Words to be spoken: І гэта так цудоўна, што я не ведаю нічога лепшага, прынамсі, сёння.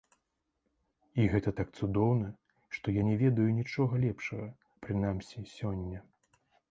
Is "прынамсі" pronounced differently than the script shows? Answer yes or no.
no